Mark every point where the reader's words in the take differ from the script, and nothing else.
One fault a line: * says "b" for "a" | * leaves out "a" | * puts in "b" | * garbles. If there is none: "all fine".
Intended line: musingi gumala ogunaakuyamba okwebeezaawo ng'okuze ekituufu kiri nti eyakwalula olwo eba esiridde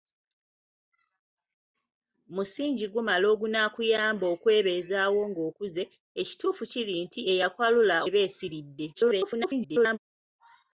* leaves out "olwo"
* garbles